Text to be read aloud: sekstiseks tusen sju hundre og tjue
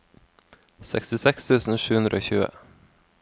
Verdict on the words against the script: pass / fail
pass